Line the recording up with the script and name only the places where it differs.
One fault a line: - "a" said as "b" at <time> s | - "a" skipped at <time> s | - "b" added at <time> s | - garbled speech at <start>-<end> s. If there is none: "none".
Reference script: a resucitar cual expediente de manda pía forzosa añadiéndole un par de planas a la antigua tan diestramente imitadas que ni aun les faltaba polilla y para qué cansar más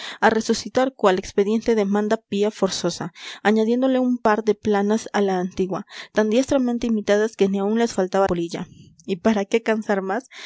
none